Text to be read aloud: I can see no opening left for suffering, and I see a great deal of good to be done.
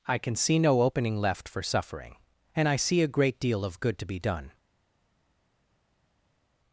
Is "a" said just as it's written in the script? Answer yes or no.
yes